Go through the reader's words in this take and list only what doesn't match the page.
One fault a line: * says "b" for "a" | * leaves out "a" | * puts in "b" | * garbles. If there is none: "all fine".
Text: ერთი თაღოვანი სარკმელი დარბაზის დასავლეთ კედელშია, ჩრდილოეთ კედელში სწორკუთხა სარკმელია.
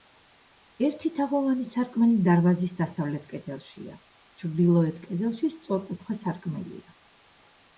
all fine